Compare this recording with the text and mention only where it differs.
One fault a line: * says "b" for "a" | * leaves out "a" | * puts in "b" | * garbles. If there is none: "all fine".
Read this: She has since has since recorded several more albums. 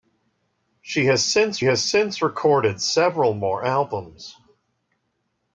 all fine